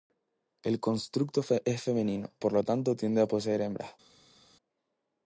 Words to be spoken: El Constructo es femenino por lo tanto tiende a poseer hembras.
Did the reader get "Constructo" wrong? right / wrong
right